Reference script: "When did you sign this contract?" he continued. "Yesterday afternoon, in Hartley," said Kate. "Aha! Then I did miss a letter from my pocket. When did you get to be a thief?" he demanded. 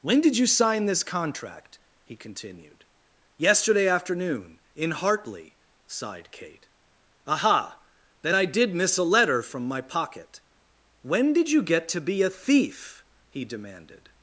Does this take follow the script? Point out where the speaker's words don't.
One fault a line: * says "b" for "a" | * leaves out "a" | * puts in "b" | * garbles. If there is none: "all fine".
* says "sighed" for "said"